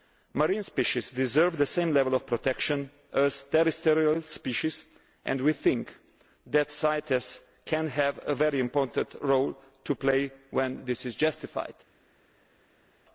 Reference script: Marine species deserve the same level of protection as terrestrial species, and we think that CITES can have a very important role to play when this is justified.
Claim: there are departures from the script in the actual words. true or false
false